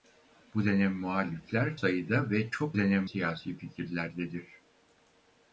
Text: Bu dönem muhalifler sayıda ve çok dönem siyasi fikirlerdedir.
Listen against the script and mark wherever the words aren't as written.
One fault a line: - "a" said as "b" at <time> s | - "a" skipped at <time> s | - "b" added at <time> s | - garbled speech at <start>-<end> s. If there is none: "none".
none